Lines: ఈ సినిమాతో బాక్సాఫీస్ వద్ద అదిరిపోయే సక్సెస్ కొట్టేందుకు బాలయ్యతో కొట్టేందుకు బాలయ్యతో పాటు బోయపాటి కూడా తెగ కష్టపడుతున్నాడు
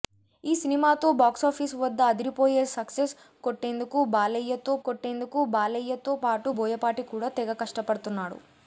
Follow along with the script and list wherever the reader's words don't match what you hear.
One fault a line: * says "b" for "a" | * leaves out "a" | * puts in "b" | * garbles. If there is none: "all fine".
all fine